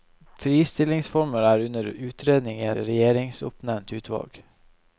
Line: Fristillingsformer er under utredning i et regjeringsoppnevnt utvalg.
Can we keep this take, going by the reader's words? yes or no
no